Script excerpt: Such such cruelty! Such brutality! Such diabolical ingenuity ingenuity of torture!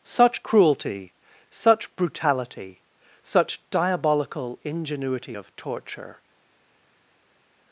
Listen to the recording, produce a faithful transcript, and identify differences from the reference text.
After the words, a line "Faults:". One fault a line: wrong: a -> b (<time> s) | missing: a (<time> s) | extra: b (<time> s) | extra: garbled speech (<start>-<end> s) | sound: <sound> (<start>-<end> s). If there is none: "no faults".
Such cruelty! Such brutality! Such diabolical ingenuity of torture!
Faults:
missing: such (0.4 s)
missing: ingenuity (5.4 s)